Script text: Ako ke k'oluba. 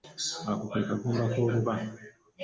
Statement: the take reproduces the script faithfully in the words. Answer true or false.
false